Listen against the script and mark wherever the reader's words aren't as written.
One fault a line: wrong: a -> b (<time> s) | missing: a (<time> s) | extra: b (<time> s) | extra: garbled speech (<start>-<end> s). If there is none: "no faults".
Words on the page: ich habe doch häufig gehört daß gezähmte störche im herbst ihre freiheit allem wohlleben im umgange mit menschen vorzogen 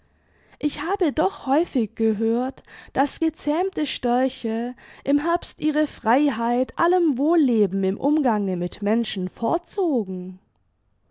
no faults